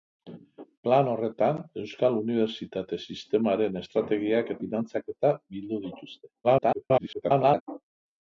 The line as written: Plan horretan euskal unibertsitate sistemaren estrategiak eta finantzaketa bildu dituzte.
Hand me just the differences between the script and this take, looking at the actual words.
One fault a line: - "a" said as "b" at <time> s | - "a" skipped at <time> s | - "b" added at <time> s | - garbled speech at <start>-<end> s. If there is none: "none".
- "eta" skipped at 4.6 s
- garbled speech at 6.4-7.6 s